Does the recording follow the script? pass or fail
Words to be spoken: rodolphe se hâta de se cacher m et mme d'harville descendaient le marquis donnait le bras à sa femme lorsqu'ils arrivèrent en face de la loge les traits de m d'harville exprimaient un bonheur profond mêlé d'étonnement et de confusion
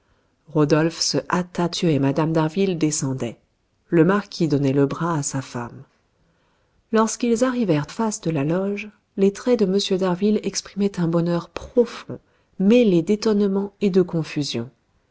fail